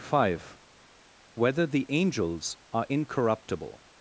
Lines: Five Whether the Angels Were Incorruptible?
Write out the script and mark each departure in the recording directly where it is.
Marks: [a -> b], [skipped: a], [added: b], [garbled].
Five Whether the Angels [Were -> Are] Incorruptible?